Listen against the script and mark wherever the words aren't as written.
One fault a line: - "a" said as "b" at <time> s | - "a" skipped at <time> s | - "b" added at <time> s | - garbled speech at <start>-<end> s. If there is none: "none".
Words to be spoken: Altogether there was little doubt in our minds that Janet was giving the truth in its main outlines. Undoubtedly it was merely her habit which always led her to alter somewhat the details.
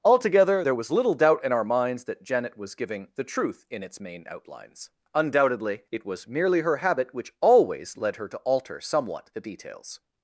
none